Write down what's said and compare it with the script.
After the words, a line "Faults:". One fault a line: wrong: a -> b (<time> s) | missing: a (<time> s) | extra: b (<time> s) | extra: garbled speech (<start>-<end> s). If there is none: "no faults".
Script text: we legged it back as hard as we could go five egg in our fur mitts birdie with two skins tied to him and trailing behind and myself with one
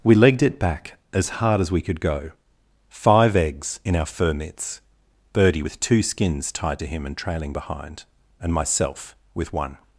we legged it back as hard as we could go five eggs in our fur mitts birdie with two skins tied to him and trailing behind and myself with one
Faults:
wrong: egg -> eggs (3.4 s)